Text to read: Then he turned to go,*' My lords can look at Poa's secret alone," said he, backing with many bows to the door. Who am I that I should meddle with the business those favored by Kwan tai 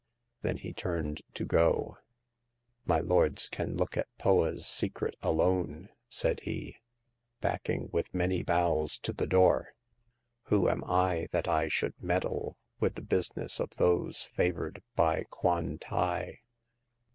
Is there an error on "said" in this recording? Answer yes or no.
no